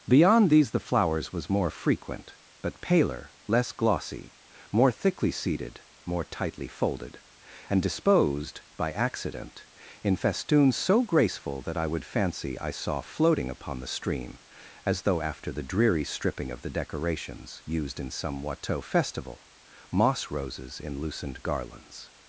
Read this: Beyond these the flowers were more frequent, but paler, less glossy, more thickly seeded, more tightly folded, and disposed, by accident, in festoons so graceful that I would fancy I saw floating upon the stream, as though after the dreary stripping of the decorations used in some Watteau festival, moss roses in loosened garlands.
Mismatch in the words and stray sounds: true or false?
true